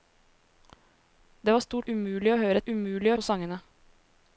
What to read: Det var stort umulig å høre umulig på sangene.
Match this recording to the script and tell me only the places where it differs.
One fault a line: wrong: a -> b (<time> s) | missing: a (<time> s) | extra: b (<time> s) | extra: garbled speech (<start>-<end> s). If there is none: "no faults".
no faults